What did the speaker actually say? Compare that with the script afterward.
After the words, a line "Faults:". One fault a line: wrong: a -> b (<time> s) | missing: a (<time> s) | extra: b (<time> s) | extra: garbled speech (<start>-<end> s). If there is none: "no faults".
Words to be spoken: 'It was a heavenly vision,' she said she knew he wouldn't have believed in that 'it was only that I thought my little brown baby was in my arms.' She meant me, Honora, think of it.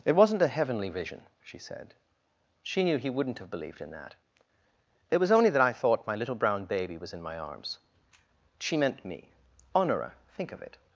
'It wasn't a heavenly vision,' she said she knew he wouldn't have believed in that 'it was only that I thought my little brown baby was in my arms.' She meant me, Honora, think of it.
Faults:
wrong: was -> wasn't (0.1 s)